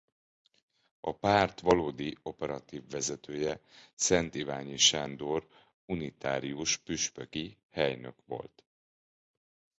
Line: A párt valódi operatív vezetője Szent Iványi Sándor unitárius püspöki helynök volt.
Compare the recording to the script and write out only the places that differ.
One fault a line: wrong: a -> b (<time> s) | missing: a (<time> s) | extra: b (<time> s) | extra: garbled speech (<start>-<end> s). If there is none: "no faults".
no faults